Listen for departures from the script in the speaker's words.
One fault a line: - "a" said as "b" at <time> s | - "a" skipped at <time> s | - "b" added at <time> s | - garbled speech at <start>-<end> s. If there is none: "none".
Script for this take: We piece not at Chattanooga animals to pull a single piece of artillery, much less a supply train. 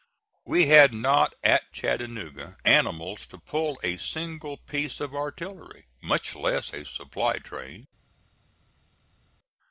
- "piece" said as "had" at 0.7 s